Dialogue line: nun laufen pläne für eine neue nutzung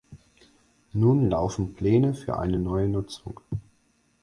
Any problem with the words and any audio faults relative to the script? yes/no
no